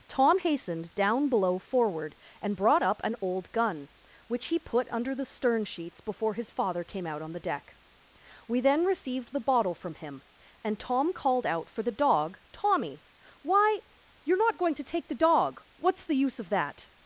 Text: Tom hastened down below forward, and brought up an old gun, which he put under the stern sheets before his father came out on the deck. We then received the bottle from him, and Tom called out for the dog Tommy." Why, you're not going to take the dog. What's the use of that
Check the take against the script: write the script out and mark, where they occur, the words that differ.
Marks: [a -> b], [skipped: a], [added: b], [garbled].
Tom hastened down below forward, and brought up an old gun, which he put under the stern sheets before his father came out on the deck. We then received the bottle from him, and Tom called out for the dog Tommy." Why, you're not going to take the dog. What's the use of that